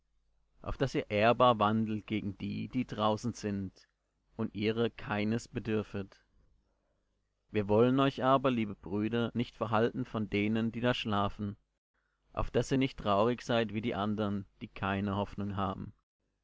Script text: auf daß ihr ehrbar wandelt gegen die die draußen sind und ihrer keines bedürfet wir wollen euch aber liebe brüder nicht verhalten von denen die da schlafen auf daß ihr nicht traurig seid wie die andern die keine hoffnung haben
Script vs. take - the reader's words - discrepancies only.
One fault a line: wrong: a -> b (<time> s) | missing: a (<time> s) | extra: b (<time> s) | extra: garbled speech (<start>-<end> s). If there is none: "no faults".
no faults